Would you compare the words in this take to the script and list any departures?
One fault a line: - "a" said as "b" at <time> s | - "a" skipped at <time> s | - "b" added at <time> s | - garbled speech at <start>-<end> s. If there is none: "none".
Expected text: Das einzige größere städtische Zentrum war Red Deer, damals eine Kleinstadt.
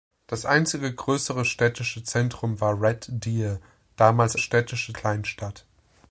- "eine" said as "städtische" at 4.4 s